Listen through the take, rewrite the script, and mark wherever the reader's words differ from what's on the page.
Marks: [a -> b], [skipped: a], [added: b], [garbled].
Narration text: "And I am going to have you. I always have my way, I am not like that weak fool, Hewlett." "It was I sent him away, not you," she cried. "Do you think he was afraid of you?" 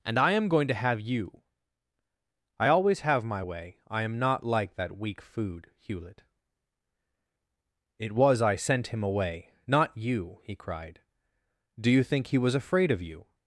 "And I am going to have you. I always have my way, I am not like that weak [fool, -> food] Hewlett." "It was I sent him away, not you," [she -> he] cried. "Do you think he was afraid of you?"